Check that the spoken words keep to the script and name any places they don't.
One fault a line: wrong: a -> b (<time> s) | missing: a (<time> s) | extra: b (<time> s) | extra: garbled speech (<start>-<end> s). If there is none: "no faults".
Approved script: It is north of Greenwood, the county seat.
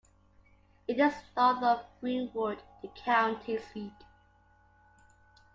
no faults